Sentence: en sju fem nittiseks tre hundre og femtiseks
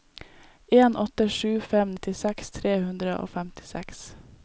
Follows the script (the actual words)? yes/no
no